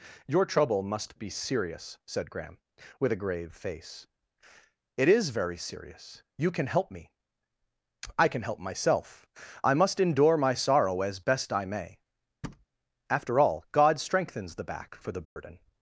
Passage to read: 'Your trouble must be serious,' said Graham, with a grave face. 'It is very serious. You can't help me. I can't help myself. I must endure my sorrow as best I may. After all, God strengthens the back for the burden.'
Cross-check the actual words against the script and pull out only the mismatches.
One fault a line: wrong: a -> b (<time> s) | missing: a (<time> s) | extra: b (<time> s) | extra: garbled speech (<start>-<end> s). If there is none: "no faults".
wrong: can't -> can (6.5 s)
wrong: can't -> can (8.3 s)